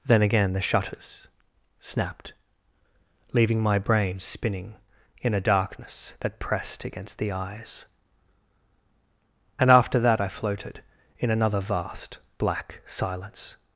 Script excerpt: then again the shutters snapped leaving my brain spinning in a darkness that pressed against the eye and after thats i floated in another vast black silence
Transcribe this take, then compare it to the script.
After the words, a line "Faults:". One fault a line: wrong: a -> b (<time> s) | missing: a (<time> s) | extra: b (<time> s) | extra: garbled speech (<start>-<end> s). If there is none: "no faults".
then again the shutters snapped leaving my brain spinning in a darkness that pressed against the eyes and after that i floated in another vast black silence
Faults:
wrong: eye -> eyes (7.3 s)
wrong: thats -> that (10.0 s)